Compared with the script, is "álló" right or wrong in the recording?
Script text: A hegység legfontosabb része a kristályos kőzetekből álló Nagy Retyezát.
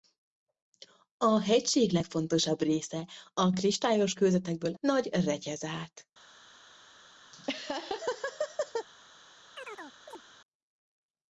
wrong